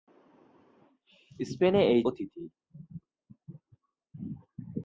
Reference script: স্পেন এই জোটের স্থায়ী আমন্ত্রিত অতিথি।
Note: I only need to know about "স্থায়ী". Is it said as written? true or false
false